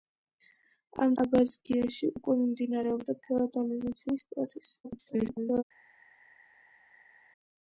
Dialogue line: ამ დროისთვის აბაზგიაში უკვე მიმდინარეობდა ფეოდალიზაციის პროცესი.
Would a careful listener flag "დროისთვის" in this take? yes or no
yes